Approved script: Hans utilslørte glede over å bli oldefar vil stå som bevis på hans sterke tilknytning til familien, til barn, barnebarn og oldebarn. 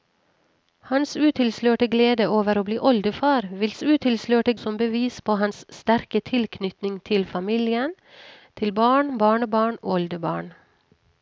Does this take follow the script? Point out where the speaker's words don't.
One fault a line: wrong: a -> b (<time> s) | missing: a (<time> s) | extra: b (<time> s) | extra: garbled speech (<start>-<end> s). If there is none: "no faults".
wrong: stå -> utilslørte (3.8 s)
missing: og (9.8 s)